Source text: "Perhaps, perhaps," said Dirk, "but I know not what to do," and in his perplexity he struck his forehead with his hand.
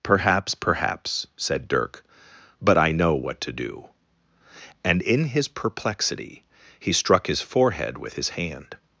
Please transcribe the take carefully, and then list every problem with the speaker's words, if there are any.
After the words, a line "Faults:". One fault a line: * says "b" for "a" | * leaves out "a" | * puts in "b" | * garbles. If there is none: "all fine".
"Perhaps, perhaps," said Dirk, "but I know what to do," and in his perplexity he struck his forehead with his hand.
Faults:
* leaves out "not"